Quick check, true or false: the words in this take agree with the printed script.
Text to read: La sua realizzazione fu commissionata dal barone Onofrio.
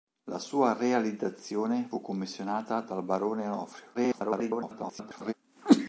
false